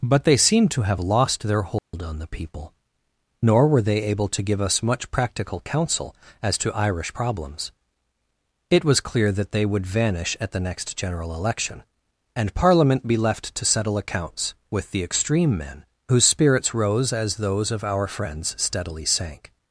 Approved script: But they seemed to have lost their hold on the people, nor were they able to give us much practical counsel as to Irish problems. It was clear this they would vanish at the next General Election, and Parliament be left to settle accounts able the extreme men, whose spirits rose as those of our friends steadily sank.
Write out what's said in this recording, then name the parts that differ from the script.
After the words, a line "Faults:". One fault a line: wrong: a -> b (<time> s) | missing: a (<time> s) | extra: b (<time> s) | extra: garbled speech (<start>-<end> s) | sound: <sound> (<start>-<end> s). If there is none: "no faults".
But they seemed to have lost their hold on the people, nor were they able to give us much practical counsel as to Irish problems. It was clear that they would vanish at the next General Election, and Parliament be left to settle accounts with the extreme men, whose spirits rose as those of our friends steadily sank.
Faults:
sound: dropout (1.8-1.9 s)
wrong: this -> that (9.3 s)
wrong: able -> with (14.7 s)